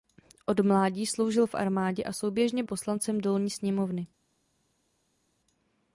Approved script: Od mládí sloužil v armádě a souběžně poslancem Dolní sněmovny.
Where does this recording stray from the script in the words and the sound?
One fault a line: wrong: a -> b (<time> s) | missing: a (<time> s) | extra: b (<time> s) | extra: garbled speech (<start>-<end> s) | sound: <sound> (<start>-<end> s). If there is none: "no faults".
no faults